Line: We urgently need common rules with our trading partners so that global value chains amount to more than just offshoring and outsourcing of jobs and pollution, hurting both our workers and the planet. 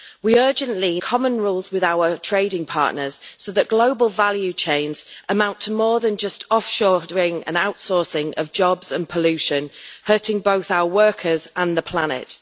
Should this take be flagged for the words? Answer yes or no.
yes